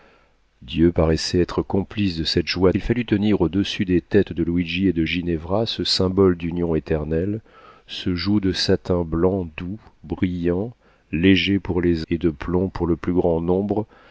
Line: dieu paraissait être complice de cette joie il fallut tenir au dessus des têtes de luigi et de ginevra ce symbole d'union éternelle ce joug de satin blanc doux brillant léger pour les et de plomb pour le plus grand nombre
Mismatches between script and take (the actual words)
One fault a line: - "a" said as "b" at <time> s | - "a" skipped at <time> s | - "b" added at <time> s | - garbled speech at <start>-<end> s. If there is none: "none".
none